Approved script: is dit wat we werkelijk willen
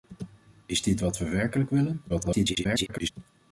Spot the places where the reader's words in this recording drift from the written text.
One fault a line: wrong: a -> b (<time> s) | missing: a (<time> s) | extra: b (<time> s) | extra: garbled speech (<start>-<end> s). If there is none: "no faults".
extra: garbled speech (2.1-3.1 s)